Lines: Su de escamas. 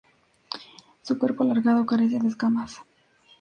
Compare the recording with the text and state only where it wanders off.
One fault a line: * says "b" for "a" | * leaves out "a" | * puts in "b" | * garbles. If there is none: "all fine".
* puts in "cuerpo alargado carece"